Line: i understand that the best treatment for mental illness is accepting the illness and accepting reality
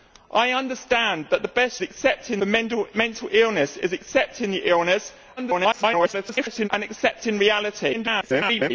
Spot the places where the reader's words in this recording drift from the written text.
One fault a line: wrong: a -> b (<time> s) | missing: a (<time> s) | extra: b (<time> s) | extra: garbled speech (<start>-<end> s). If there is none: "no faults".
wrong: treatment -> accepting (1.8 s)
extra: garbled speech (5.4-6.7 s)
extra: garbled speech (7.9-8.7 s)